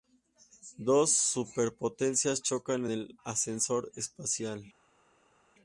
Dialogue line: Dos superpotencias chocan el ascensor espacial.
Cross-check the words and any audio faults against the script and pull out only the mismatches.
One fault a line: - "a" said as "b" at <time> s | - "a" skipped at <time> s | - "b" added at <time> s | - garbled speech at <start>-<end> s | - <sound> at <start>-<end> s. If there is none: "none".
none